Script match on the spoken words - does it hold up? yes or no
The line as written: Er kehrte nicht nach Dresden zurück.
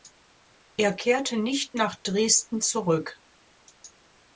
yes